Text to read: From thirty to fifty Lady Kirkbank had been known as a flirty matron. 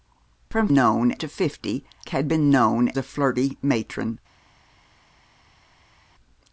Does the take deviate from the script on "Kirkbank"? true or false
true